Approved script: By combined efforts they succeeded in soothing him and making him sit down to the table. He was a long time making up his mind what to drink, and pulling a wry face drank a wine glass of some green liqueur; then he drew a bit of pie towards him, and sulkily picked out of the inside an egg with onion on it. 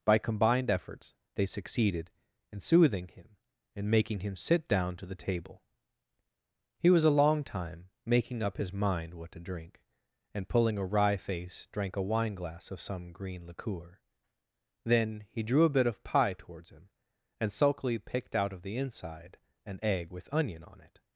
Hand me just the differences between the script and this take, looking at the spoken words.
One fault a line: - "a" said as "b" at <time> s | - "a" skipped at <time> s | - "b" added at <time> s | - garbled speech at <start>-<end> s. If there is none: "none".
none